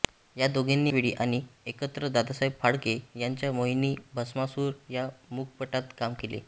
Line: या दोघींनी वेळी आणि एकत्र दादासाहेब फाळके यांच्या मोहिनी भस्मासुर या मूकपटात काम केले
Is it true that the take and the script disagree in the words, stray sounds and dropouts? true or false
false